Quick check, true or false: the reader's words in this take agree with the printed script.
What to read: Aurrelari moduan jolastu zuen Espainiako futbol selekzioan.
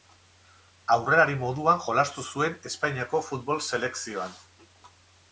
true